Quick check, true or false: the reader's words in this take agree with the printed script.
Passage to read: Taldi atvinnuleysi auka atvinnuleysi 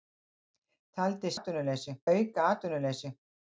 true